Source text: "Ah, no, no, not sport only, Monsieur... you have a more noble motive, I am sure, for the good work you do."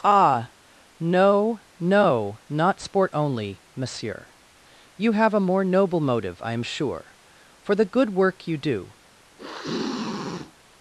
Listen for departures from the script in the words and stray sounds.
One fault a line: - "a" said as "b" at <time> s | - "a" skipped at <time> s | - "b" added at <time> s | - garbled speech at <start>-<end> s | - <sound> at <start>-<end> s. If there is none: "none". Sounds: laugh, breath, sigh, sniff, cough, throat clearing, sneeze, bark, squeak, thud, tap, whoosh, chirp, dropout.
- sniff at 9.4-10.5 s